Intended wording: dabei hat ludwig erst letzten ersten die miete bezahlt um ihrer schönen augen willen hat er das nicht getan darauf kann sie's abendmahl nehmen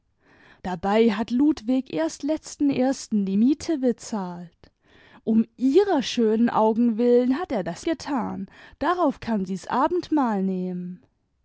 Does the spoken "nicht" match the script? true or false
false